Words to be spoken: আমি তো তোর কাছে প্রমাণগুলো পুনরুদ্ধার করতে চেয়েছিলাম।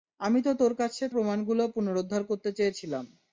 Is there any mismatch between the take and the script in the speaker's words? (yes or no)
no